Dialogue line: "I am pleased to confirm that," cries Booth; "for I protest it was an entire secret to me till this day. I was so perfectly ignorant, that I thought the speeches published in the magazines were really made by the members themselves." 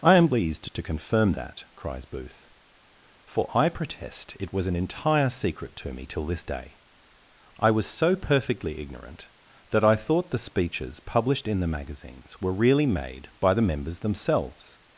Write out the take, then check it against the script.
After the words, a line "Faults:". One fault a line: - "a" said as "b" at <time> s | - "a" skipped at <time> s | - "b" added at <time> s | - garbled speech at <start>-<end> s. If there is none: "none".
"I am pleased to confirm that," cries Booth; "for I protest it was an entire secret to me till this day. I was so perfectly ignorant, that I thought the speeches published in the magazines were really made by the members themselves."
Faults:
none